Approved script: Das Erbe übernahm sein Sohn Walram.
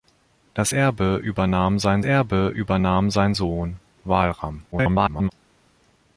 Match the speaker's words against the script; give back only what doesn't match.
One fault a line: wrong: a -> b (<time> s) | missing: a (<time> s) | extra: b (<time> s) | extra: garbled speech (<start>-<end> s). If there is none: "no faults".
extra: Erbe übernahm sein (2.0 s)
extra: garbled speech (4.7-5.3 s)